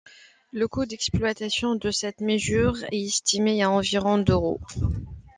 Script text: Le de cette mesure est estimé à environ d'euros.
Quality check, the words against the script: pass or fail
fail